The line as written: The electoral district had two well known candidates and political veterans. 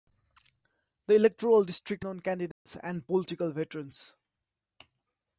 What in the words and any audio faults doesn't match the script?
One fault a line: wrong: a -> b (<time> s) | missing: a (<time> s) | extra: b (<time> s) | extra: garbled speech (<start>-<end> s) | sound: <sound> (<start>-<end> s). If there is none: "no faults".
missing: had two well (2.0 s)
sound: dropout (2.5-2.7 s)